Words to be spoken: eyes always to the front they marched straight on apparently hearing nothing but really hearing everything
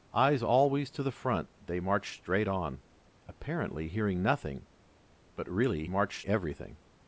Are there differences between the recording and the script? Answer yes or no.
yes